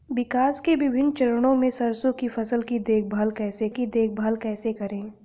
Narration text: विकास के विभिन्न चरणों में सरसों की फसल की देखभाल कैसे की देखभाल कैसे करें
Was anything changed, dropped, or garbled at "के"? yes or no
no